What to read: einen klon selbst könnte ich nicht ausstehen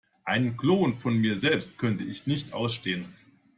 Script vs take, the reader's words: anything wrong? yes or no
yes